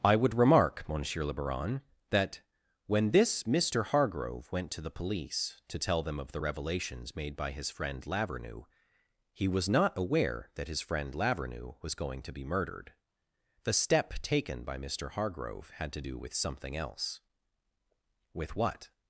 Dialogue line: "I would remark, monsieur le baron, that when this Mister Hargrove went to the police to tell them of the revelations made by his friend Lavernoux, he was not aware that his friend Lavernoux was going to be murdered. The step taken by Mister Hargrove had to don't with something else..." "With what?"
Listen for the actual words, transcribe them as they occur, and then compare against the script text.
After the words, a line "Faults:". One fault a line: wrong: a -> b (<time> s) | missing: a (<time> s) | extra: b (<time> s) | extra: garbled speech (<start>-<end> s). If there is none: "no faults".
"I would remark, monsieur le baron, that when this Mister Hargrove went to the police to tell them of the revelations made by his friend Lavernoux, he was not aware that his friend Lavernoux was going to be murdered. The step taken by Mister Hargrove had to do with something else..." "With what?"
Faults:
wrong: don't -> do (16.0 s)